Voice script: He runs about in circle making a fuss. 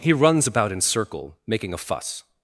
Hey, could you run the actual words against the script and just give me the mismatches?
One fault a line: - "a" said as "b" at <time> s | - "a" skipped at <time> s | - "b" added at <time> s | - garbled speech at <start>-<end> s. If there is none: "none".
none